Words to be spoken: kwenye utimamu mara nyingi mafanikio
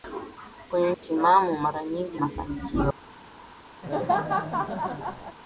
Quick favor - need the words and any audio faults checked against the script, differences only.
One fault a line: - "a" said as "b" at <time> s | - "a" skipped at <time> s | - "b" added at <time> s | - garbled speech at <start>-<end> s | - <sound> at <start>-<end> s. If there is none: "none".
- laugh at 3.8-5.4 s